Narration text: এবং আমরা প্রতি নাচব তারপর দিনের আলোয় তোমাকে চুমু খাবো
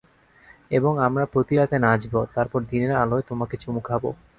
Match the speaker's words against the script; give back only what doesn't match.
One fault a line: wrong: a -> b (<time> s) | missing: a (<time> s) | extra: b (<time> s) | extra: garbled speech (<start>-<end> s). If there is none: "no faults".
extra: রাতে (1.5 s)